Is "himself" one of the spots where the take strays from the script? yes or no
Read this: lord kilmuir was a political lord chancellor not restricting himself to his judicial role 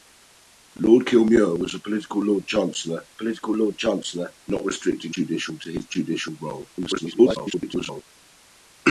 yes